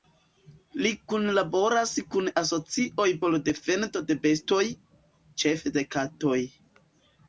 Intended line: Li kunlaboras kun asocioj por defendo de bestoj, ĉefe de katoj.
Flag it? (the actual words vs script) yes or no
no